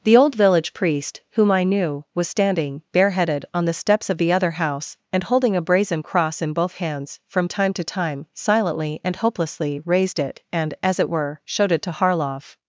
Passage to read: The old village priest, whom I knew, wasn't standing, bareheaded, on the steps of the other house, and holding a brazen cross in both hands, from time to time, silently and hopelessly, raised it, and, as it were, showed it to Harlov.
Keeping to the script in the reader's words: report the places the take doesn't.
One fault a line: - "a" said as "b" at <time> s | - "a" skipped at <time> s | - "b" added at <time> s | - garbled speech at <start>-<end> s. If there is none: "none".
- "wasn't" said as "was" at 2.1 s